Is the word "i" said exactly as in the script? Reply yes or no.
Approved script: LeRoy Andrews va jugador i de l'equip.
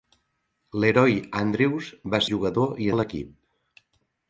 yes